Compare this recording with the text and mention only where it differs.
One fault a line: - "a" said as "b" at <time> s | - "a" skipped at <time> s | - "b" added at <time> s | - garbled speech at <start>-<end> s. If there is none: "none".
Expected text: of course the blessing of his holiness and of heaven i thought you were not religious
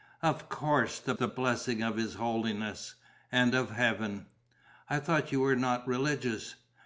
- "the" added at 1.1 s